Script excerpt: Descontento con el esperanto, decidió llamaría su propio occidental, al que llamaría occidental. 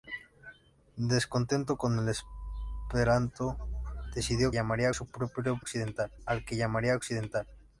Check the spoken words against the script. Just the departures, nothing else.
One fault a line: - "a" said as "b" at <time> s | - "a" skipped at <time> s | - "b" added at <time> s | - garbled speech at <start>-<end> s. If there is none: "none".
none